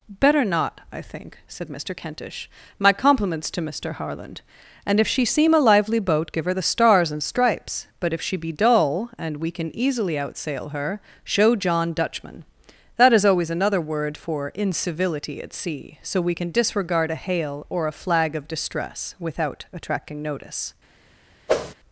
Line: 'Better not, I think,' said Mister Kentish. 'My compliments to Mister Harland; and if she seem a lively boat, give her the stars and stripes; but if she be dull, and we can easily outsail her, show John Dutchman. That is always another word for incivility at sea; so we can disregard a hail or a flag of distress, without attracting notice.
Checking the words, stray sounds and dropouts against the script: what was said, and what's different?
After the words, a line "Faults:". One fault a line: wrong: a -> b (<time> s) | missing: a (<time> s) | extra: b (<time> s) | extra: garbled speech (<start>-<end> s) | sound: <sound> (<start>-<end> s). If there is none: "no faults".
'Better not, I think,' said Mister Kentish. 'My compliments to Mister Harland; and if she seem a lively boat, give her the stars and stripes; but if she be dull, and we can easily outsail her, show John Dutchman. That is always another word for incivility at sea; so we can disregard a hail or a flag of distress, without attracting notice.
Faults:
sound: whoosh (21.5-21.7 s)